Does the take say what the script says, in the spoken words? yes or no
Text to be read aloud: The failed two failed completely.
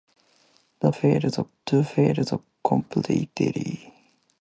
yes